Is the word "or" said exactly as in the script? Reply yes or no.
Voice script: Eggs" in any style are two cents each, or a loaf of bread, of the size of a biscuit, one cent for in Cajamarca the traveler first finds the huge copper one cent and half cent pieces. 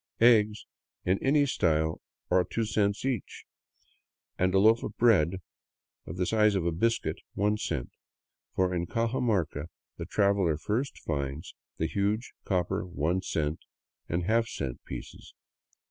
no